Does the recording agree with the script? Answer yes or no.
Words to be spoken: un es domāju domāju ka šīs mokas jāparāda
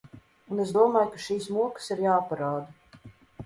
no